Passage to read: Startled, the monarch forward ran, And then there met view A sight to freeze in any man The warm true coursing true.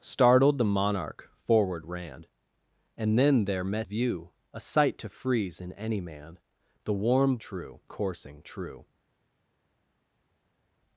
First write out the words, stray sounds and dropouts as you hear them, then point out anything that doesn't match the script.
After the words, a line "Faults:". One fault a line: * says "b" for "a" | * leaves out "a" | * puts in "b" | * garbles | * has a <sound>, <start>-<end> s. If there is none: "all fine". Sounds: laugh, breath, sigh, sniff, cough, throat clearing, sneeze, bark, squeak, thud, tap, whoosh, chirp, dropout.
Startled, the monarch forward ran, And then there met view A sight to freeze in any man The warm true coursing true.
Faults:
all fine